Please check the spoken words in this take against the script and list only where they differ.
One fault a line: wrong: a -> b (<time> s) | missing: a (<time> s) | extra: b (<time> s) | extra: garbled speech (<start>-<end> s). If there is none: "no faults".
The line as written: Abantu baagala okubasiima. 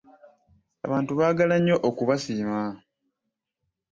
extra: nnyo (1.6 s)